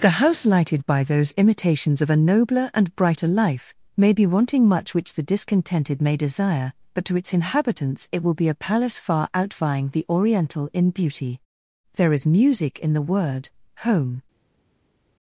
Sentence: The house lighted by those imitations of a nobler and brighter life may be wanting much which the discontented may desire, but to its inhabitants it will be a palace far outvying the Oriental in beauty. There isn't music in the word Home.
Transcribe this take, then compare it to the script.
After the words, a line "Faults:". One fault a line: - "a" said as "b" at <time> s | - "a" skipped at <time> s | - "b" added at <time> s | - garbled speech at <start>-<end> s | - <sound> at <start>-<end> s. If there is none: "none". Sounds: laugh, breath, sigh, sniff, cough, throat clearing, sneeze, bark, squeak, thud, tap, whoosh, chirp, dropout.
The house lighted by those imitations of a nobler and brighter life may be wanting much which the discontented may desire, but to its inhabitants it will be a palace far outvying the Oriental in beauty. There is music in the word Home.
Faults:
- "isn't" said as "is" at 12.1 s